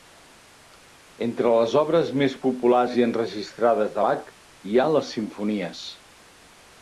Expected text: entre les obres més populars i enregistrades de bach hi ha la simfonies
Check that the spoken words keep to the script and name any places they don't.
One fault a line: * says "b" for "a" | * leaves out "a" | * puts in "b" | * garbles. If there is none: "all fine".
* says "les" for "la"